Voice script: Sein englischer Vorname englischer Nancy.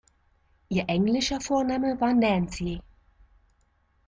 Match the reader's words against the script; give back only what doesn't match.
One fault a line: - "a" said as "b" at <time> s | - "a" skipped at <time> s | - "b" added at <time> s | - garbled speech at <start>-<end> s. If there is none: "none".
- "Sein" said as "Ihr" at 0.7 s
- "englischer" said as "war" at 2.0 s